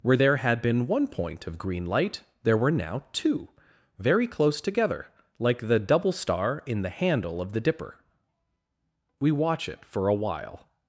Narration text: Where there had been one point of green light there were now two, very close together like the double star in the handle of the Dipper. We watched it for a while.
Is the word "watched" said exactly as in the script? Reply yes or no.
no